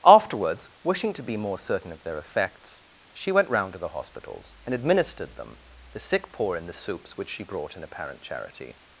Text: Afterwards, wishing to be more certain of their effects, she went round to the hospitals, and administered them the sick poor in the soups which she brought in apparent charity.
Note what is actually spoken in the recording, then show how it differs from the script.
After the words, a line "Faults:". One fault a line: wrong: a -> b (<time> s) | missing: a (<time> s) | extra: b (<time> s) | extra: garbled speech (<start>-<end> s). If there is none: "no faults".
Afterwards, wishing to be more certain of their effects, she went round to the hospitals, and administered them the sick poor in the soups which she brought in apparent charity.
Faults:
no faults